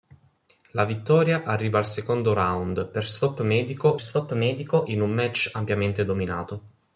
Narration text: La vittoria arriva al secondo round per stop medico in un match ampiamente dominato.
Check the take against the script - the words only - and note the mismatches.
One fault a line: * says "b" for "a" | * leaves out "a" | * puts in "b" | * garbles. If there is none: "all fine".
* puts in "stop medico"